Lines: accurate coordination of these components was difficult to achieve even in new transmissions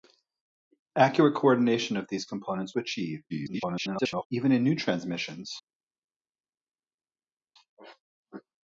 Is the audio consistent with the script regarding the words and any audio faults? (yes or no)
no